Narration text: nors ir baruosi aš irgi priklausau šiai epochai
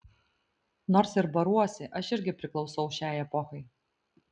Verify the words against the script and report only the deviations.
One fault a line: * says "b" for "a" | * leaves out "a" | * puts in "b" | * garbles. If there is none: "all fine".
all fine